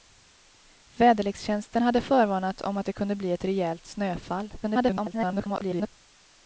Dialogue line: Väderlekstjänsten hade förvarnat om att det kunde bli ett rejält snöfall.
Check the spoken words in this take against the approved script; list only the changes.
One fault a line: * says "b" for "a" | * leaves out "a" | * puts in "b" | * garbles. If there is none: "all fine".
* garbles